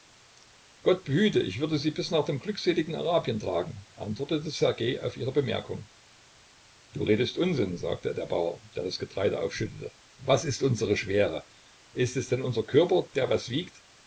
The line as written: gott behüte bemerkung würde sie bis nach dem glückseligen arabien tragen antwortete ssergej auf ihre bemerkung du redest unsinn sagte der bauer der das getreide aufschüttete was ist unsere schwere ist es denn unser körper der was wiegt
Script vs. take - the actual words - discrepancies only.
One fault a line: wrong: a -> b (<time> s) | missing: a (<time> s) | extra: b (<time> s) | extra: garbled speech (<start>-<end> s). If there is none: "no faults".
wrong: bemerkung -> ich (1.4 s)